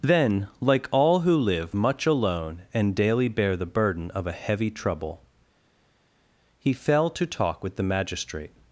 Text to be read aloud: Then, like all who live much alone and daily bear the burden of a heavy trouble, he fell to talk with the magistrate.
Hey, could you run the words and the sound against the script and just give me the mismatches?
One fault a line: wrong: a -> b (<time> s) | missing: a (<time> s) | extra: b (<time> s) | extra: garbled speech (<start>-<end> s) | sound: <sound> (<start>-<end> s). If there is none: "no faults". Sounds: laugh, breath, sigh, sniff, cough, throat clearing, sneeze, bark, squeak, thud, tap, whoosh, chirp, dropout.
no faults